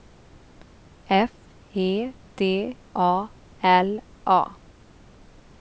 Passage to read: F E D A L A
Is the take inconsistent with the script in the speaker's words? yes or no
no